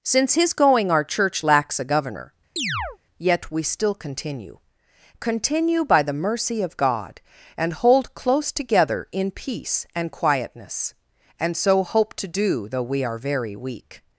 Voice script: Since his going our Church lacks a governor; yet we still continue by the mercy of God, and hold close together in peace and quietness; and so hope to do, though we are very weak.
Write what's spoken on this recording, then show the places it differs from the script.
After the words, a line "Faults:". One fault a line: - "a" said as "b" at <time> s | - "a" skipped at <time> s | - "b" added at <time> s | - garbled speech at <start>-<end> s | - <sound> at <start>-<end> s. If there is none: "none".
Since his going our Church lacks a governor; yet we still continue continue by the mercy of God, and hold close together in peace and quietness; and so hope to do, though we are very weak.
Faults:
- chirp at 2.6-3.0 s
- "continue" added at 5.2 s